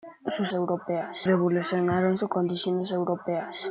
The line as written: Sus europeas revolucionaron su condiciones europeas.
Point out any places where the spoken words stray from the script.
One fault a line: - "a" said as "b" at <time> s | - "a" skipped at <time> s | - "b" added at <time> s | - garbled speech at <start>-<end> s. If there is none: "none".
none